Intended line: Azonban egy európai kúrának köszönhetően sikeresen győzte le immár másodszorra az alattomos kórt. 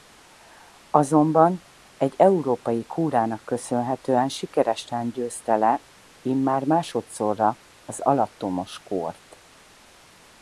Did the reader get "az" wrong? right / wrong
right